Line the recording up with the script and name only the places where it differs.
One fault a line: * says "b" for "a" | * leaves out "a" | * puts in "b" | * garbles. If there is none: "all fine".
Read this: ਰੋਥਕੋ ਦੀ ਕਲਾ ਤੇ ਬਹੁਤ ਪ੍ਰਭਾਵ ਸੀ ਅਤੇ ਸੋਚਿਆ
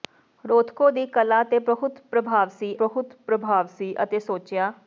* puts in "ਬਹੁਤ ਪ੍ਰਭਾਵ ਸੀ"